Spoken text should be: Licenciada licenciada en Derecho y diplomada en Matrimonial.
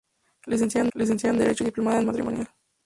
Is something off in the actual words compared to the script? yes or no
no